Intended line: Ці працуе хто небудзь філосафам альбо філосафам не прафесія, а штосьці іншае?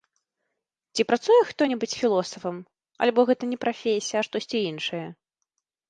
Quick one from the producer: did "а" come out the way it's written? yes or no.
yes